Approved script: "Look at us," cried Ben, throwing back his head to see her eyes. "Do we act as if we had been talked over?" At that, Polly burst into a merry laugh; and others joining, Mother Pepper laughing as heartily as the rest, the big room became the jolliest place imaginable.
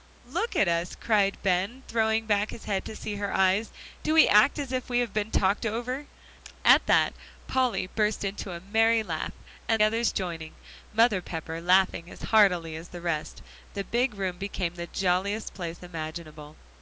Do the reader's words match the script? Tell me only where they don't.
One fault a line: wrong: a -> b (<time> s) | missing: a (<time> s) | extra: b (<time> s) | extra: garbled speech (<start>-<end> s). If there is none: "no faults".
no faults